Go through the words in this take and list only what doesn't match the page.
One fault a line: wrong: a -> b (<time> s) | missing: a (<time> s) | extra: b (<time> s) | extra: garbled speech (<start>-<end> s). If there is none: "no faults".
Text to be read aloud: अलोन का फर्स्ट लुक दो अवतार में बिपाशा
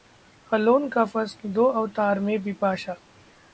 missing: लुक (1.4 s)